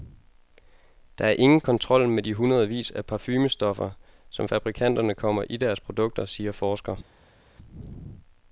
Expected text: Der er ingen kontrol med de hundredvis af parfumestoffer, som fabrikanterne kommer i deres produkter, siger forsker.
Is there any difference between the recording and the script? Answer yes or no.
no